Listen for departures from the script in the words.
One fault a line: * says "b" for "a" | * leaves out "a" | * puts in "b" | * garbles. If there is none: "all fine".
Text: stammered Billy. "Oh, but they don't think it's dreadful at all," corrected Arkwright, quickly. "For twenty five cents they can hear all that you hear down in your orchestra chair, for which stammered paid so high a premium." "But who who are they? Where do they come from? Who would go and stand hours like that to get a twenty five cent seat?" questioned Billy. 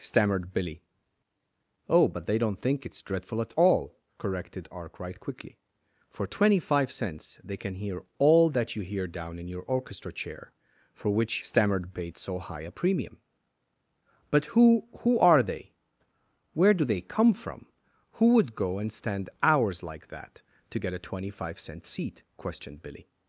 all fine